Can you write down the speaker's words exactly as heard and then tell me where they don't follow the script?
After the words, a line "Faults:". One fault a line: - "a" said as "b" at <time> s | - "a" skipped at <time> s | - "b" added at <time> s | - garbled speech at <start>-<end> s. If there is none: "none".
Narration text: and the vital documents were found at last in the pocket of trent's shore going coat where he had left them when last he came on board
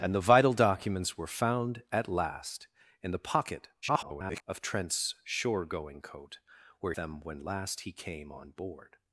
and the vital documents were found at last in the pocket [garbled] of trent's shore going coat where them when last he came on board
Faults:
- garbled speech at 3.8-4.4 s
- "he had left" skipped at 6.9 s